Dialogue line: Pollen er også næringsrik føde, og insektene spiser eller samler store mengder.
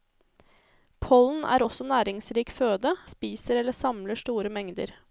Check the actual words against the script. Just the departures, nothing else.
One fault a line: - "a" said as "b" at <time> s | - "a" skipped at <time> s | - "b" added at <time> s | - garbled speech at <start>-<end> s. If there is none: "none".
- "og insektene" skipped at 2.9 s